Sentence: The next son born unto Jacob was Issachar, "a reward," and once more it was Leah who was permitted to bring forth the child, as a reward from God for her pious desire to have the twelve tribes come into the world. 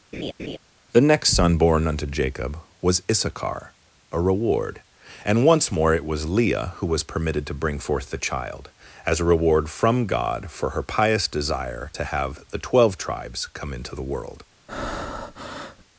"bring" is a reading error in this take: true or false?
false